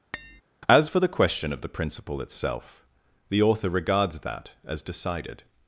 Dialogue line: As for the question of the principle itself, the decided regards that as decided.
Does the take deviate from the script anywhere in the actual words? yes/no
yes